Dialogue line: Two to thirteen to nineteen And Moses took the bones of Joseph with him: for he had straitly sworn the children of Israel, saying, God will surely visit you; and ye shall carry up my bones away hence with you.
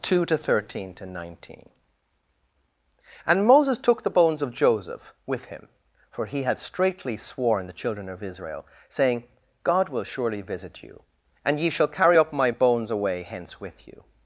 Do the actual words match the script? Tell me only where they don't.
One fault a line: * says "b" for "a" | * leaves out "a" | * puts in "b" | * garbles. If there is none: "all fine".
all fine